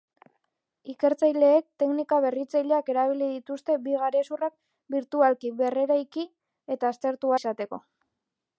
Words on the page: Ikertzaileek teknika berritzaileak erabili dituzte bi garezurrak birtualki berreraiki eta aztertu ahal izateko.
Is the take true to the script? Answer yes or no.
no